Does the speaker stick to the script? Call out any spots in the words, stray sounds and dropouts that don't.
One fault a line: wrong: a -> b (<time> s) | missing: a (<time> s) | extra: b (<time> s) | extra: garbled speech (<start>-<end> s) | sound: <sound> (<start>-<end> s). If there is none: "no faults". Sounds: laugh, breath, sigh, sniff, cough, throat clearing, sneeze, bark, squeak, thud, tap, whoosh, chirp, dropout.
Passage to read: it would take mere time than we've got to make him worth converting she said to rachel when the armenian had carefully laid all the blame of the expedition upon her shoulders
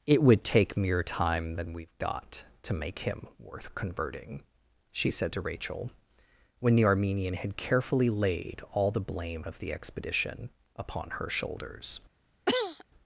sound: cough (12.5-12.8 s)